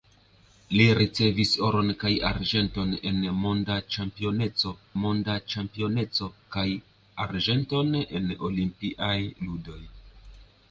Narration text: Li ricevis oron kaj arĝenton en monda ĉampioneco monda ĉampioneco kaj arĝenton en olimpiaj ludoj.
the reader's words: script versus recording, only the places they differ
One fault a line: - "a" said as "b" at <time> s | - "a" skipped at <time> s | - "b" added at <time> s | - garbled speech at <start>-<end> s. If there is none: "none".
none